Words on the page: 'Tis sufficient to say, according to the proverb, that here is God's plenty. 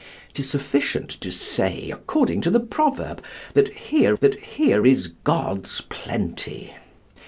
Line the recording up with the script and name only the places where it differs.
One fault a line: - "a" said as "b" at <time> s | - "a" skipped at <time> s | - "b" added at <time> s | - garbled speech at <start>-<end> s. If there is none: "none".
- "that here" added at 4.2 s